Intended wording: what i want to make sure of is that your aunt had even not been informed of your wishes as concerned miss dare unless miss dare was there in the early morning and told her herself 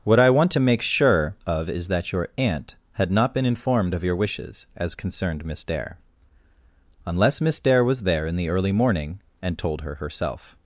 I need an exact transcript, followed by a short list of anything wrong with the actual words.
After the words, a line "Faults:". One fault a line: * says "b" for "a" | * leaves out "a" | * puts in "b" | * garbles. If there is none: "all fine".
what i want to make sure of is that your aunt had not been informed of your wishes as concerned miss dare unless miss dare was there in the early morning and told her herself
Faults:
* leaves out "even"